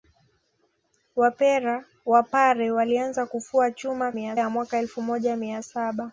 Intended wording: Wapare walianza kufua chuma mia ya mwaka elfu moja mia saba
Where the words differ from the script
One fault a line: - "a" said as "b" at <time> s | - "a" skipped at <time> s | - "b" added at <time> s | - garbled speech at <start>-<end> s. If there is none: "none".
none